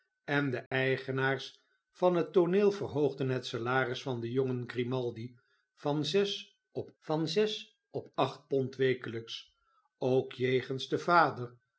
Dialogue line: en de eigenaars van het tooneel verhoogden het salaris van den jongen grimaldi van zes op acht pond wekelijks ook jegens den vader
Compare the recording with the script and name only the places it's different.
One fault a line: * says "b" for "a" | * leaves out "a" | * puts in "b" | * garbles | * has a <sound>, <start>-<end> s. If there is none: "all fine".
* has a dropout, 0.7-0.7 s
* puts in "van zes op"